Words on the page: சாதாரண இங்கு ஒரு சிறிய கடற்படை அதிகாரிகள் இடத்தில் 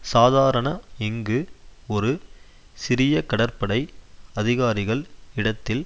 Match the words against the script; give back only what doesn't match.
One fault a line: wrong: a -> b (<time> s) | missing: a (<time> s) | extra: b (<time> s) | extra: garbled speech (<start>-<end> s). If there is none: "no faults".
no faults